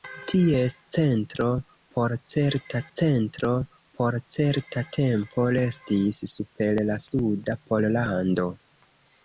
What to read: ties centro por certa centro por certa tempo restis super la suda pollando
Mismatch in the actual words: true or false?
false